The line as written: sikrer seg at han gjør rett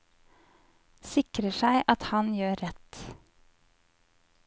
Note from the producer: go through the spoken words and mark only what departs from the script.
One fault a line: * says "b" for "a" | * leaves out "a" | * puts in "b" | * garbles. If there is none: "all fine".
all fine